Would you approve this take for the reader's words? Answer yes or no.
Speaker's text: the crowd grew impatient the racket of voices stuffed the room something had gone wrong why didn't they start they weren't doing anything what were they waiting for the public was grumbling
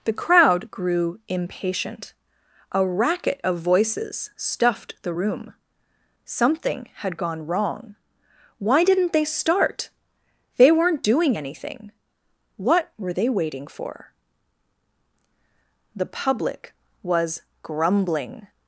no